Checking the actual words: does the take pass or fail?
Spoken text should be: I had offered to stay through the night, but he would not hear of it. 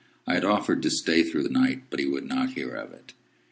pass